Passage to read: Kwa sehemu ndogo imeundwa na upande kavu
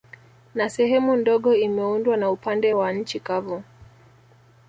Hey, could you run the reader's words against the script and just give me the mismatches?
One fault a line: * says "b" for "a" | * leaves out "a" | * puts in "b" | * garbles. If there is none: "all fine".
* says "Na" for "Kwa"
* puts in "wa nchi"